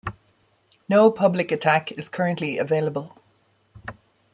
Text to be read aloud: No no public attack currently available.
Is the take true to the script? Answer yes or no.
no